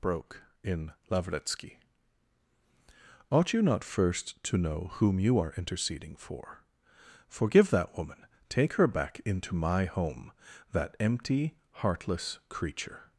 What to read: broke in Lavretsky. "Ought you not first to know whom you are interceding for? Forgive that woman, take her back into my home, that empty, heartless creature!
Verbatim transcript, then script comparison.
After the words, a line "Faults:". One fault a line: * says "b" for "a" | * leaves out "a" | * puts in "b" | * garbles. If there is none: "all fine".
broke in Lavretsky. "Ought you not first to know whom you are interceding for? Forgive that woman, take her back into my home, that empty, heartless creature!
Faults:
all fine